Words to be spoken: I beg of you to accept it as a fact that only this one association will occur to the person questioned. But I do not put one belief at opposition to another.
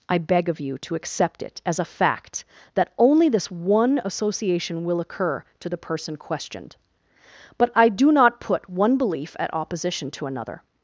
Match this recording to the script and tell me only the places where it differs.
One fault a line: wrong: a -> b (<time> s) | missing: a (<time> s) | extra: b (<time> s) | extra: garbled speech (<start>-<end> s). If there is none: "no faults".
no faults